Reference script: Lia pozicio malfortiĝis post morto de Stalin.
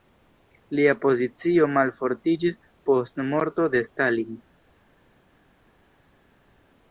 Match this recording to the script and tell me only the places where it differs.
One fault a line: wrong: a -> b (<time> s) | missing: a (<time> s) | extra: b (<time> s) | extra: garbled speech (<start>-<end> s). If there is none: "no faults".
no faults